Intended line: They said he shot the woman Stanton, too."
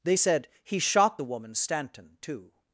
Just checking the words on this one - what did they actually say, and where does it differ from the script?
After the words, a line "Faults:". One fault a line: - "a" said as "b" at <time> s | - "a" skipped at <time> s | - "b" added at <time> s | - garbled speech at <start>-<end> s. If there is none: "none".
They said he shot the woman Stanton, too."
Faults:
none